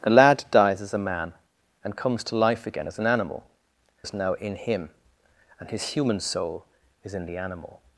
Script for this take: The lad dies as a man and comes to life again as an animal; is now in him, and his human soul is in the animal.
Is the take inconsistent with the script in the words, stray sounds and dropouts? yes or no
no